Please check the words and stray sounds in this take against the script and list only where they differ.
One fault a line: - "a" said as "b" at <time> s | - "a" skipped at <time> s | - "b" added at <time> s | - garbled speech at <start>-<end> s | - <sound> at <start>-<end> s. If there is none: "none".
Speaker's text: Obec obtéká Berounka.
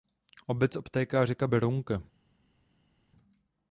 - "řeka" added at 1.2 s